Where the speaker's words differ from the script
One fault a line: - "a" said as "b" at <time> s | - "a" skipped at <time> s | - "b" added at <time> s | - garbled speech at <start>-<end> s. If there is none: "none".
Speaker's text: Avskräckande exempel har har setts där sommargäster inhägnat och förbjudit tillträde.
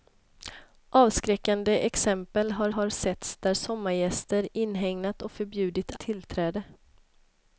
none